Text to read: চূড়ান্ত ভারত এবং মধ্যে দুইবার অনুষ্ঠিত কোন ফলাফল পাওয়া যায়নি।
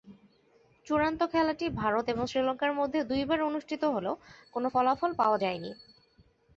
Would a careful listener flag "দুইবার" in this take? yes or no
no